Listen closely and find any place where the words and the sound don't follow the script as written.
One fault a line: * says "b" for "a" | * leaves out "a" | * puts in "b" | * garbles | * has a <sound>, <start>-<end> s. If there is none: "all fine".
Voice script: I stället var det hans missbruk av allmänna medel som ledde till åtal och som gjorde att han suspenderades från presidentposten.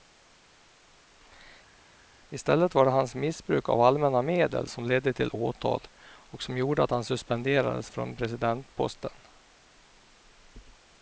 all fine